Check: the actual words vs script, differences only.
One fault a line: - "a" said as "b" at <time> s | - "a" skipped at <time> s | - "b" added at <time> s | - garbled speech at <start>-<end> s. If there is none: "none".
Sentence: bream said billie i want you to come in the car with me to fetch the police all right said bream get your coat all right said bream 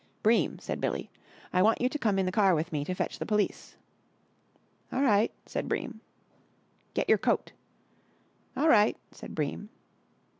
none